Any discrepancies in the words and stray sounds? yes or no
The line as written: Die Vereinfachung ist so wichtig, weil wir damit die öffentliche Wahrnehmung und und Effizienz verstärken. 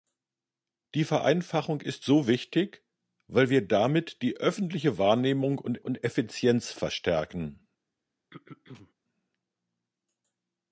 yes